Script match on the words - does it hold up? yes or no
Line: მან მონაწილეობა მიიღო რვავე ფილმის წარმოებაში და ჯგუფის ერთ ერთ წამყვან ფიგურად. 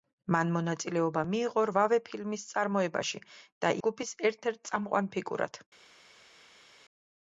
yes